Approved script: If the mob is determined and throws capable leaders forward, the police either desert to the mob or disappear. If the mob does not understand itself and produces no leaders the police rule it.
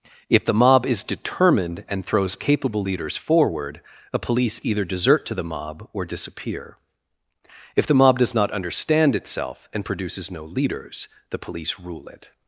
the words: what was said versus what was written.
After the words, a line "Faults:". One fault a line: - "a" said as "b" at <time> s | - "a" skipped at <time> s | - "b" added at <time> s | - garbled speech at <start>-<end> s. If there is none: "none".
If the mob is determined and throws capable leaders forward, a police either desert to the mob or disappear. If the mob does not understand itself and produces no leaders the police rule it.
Faults:
- "the" said as "a" at 4.1 s